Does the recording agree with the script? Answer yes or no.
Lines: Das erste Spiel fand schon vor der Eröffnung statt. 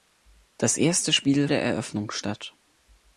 no